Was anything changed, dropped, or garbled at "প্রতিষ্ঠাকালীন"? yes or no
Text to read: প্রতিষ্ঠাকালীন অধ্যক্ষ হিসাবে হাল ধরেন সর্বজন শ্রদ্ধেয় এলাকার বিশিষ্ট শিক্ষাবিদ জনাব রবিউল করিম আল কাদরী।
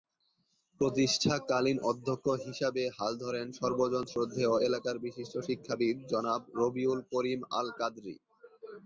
no